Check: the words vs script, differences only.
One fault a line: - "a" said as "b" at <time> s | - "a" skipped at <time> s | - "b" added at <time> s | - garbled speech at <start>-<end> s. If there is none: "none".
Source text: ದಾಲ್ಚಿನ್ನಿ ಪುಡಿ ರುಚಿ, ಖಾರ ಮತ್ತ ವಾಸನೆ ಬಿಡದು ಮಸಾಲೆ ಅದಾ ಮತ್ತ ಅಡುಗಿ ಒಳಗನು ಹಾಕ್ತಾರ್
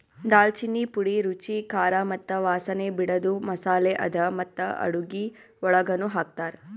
none